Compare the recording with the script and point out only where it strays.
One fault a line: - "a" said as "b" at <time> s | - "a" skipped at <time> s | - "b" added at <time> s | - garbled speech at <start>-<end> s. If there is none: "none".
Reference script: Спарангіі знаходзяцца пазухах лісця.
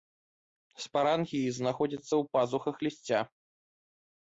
- "ў" added at 2.1 s